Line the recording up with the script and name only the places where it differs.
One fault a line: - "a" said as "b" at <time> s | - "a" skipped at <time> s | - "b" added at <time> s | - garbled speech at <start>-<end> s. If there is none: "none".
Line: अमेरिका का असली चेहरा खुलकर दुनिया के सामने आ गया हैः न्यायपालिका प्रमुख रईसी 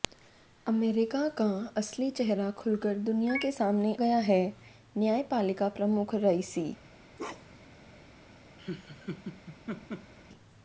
- "आ" skipped at 3.9 s